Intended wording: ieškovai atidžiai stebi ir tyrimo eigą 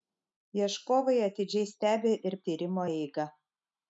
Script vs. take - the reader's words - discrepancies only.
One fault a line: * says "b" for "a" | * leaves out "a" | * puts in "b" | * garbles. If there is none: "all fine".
all fine